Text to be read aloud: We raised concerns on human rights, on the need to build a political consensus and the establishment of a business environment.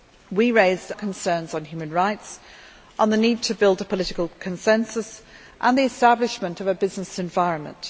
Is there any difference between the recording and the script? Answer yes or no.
no